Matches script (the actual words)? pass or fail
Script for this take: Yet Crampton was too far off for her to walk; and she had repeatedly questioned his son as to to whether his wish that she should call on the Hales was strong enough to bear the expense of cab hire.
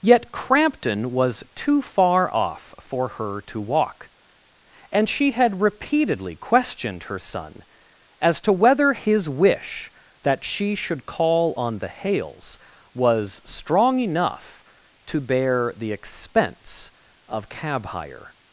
fail